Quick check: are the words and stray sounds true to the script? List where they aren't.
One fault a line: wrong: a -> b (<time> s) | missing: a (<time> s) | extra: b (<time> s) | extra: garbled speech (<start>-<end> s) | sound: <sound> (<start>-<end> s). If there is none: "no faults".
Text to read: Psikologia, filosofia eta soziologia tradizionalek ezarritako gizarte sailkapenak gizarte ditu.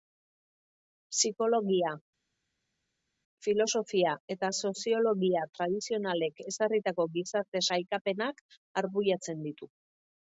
wrong: gizarte -> arbuiatzen (8.8 s)